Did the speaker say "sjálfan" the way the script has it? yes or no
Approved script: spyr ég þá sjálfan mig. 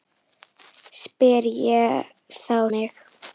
no